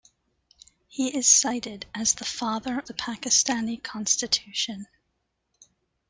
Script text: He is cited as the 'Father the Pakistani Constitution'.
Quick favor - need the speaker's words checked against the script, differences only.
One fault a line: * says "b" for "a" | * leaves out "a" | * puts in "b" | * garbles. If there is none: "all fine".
all fine